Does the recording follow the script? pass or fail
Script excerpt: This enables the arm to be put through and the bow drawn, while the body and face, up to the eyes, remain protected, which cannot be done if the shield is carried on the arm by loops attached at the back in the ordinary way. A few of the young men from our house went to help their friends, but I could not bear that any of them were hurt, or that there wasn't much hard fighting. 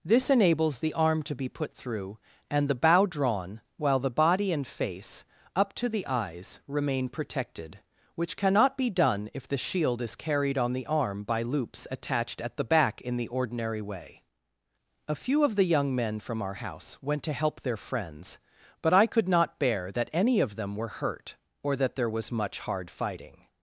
fail